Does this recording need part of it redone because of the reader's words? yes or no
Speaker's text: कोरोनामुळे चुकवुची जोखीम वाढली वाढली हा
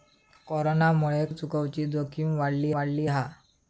no